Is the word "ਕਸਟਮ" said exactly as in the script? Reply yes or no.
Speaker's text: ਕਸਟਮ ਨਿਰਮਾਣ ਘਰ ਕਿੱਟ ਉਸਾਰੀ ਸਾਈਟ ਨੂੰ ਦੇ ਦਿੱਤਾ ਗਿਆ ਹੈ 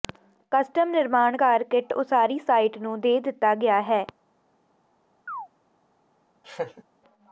yes